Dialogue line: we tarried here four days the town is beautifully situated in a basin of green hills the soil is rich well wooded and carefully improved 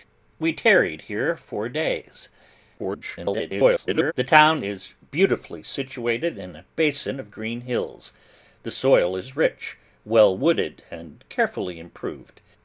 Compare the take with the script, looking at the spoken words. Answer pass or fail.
fail